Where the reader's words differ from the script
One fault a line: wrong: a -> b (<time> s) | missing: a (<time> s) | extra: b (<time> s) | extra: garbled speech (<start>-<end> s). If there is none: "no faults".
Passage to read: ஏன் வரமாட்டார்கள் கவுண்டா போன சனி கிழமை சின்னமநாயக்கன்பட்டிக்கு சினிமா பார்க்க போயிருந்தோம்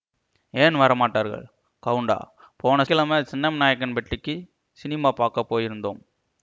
missing: சனி (2.8 s)